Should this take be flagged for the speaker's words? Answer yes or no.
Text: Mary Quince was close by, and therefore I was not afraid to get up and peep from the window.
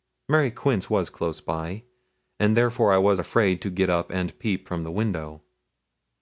yes